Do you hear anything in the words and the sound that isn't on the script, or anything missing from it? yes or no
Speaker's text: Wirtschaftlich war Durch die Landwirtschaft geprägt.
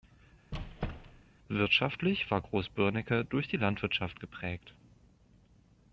yes